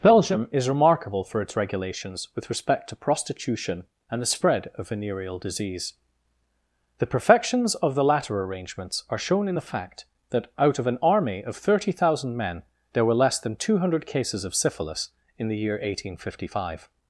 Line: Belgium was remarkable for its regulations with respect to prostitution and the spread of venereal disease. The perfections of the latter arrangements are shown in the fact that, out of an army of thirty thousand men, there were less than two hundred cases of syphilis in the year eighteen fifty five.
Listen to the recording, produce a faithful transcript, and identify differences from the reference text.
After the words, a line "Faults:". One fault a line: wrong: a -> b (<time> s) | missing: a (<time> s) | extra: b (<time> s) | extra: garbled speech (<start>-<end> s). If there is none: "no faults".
Belgium is remarkable for its regulations with respect to prostitution and the spread of venereal disease. The perfections of the latter arrangements are shown in the fact that, out of an army of thirty thousand men, there were less than two hundred cases of syphilis in the year eighteen fifty five.
Faults:
wrong: was -> is (0.5 s)